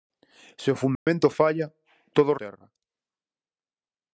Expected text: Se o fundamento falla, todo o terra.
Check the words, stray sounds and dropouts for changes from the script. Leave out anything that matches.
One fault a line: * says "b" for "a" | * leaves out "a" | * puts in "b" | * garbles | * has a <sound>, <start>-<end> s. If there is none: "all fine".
* has a dropout, 1.0-1.1 s